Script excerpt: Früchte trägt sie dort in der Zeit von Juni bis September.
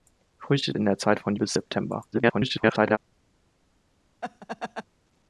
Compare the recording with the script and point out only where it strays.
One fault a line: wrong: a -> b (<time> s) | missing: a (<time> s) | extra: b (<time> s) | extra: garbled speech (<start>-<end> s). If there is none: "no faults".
missing: trägt sie dort (0.7 s)
missing: Juni (1.3 s)
extra: garbled speech (2.1-3.0 s)